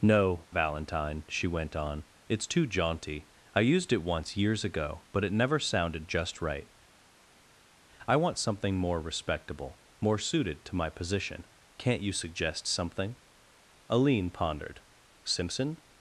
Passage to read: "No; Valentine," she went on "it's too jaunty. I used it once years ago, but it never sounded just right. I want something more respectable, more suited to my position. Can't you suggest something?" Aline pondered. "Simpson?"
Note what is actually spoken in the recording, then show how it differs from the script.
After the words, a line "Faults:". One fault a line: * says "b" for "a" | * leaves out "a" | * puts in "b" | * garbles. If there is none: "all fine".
"No; Valentine," she went on "it's too jaunty. I used it once years ago, but it never sounded just right. I want something more respectable, more suited to my position. Can't you suggest something?" Aline pondered. "Simpson?"
Faults:
all fine